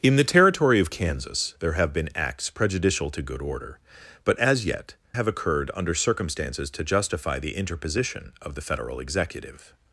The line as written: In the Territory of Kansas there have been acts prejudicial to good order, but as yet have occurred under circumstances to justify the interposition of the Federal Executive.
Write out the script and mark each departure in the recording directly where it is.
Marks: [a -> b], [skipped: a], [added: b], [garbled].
In the Territory of Kansas there have been acts prejudicial to good order, but as yet have occurred under circumstances to justify the interposition of the Federal Executive.